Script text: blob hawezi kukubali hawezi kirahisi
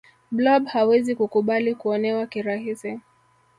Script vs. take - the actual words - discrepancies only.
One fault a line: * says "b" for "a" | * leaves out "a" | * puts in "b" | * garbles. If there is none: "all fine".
* says "kuonewa" for "hawezi"